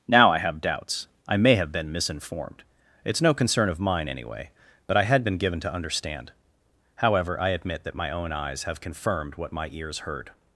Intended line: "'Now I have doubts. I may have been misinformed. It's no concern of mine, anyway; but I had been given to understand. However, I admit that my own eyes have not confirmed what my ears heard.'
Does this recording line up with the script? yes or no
no